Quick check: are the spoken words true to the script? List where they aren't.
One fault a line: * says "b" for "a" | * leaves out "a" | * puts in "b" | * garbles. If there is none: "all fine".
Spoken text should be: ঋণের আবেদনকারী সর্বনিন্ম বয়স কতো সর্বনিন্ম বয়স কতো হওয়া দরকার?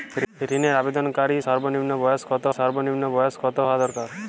all fine